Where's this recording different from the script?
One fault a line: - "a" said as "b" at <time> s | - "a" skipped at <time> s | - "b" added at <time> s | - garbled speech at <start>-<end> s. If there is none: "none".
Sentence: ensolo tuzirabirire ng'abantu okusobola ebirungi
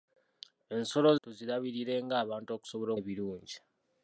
none